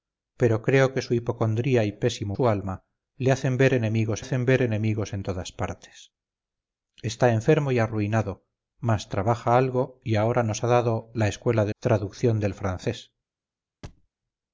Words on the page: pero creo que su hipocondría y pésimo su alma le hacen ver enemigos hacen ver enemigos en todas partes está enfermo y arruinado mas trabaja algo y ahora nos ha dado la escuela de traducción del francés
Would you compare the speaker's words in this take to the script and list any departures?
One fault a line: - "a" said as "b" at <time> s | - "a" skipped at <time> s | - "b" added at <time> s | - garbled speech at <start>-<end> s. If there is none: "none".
none